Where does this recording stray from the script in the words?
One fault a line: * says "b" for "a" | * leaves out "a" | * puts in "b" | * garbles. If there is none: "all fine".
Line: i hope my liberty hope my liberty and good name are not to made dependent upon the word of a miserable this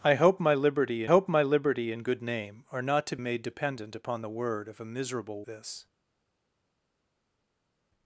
all fine